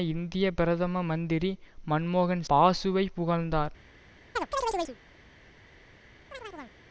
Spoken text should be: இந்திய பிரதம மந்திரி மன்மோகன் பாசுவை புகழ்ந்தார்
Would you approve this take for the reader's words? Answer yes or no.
yes